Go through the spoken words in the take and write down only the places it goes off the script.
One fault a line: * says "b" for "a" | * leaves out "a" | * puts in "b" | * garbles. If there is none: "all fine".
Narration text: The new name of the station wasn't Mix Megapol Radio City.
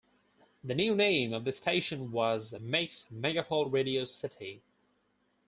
* says "was" for "wasn't"